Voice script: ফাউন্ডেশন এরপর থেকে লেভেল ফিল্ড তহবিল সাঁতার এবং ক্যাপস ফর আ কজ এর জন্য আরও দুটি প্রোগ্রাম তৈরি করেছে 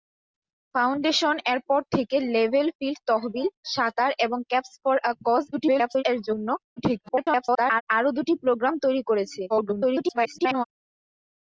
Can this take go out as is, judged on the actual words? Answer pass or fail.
fail